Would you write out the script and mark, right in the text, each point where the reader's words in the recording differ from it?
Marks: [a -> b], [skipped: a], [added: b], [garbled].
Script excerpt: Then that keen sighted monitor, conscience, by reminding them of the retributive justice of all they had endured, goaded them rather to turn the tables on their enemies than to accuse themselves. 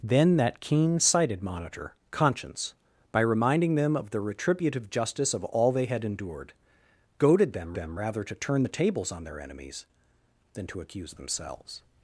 Then that keen sighted monitor, conscience, by reminding them of the retributive justice of all they had endured, goaded them [added: them] rather to turn the tables on their enemies than to accuse themselves.